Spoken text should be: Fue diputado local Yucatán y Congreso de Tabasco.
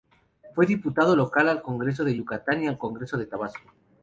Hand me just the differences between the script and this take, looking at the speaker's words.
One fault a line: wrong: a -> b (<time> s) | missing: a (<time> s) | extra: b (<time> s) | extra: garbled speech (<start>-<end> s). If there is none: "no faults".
extra: al Congreso de (1.5 s)
extra: al (2.7 s)